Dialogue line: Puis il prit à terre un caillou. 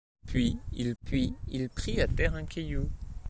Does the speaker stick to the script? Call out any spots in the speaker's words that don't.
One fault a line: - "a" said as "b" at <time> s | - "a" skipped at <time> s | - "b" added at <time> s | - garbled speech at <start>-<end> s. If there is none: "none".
- "puis il" added at 1.0 s